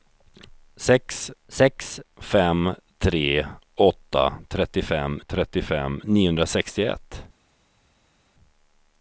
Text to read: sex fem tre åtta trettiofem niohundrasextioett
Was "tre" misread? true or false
false